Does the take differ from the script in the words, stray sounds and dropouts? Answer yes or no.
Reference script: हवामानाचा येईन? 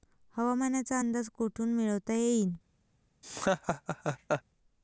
yes